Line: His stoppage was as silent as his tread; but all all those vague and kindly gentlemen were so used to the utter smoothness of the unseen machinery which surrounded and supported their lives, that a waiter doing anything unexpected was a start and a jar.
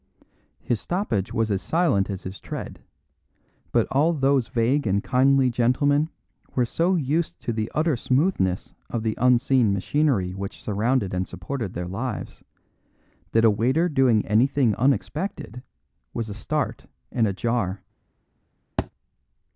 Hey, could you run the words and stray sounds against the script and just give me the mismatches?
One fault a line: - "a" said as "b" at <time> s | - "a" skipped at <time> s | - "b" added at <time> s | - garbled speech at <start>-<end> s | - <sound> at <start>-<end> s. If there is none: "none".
- "all" skipped at 4.1 s
- thud at 18.8-18.9 s